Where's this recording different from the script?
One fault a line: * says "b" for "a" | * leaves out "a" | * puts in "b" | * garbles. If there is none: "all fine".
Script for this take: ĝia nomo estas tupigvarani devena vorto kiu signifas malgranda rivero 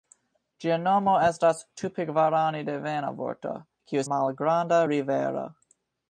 * leaves out "signifas"